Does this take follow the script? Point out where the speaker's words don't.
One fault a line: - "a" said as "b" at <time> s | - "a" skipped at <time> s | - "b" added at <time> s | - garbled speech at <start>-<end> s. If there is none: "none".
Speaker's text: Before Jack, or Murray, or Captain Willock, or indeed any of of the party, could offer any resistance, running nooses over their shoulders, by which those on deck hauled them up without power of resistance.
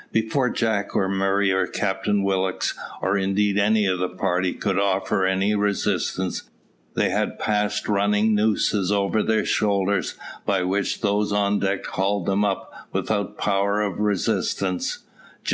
- "of" skipped at 4.0 s
- "they had passed" added at 7.0 s